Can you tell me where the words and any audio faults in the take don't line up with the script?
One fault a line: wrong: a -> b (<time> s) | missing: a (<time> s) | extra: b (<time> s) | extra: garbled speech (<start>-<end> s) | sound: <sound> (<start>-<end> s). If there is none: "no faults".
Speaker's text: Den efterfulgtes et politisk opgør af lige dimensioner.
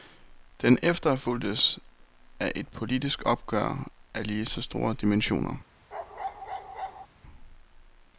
extra: af (2.4 s)
extra: så store (4.5 s)
sound: bark (5.9-7.1 s)